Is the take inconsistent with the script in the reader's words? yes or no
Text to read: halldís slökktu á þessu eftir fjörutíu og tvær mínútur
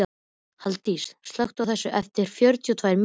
no